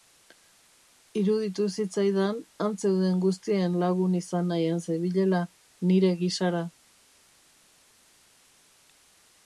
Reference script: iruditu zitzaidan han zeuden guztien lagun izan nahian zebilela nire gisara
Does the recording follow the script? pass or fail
pass